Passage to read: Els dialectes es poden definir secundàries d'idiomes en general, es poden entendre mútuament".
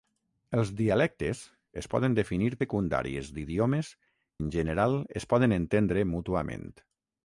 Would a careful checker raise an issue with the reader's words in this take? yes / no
no